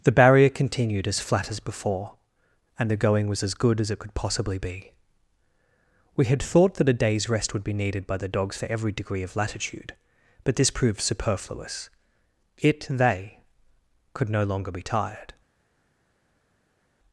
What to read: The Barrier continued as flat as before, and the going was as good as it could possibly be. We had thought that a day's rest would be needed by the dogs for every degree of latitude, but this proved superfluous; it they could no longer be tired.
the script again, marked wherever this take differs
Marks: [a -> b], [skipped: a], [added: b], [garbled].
The Barrier continued as flat as before, and the going was as good as it could possibly be. We had thought that a day's rest would be needed by the dogs for every degree of latitude, but this proved superfluous; it they could no longer be tired.